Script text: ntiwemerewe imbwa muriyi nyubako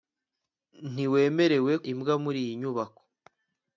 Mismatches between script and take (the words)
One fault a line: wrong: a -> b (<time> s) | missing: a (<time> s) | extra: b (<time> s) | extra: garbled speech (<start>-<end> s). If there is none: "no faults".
no faults